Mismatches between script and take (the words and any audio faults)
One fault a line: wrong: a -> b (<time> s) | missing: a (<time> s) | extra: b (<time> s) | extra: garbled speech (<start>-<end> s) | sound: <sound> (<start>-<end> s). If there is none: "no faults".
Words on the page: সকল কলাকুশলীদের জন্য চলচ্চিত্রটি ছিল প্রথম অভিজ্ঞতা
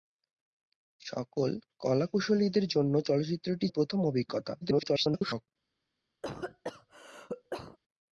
missing: ছিল (3.7 s)
extra: garbled speech (4.6-5.5 s)
sound: cough (6.2-7.8 s)